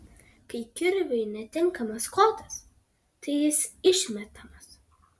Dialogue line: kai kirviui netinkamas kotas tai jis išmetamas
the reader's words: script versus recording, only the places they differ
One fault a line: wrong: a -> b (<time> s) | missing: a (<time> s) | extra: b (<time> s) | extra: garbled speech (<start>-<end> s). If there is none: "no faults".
no faults